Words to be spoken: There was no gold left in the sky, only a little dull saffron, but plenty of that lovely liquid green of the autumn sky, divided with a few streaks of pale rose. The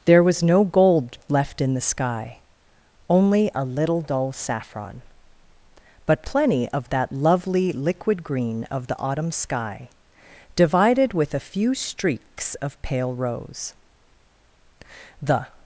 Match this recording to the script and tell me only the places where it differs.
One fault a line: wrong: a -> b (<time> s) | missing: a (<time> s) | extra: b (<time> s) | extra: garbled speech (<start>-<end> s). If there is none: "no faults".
no faults